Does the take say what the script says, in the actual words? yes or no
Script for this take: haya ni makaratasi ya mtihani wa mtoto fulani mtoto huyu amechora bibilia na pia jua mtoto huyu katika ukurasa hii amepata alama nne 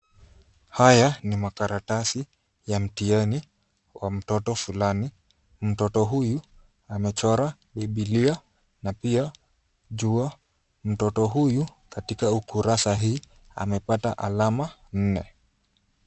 yes